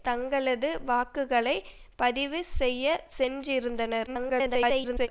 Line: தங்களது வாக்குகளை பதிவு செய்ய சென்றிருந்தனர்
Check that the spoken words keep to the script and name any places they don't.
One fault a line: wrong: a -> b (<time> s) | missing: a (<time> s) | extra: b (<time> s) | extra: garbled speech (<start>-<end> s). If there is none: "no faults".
extra: garbled speech (4.1-5.1 s)